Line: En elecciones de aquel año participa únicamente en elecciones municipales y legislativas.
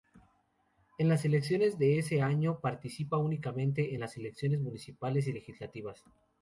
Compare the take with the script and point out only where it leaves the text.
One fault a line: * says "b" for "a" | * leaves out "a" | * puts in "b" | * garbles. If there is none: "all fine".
* puts in "las"
* says "ese" for "aquel"
* puts in "las"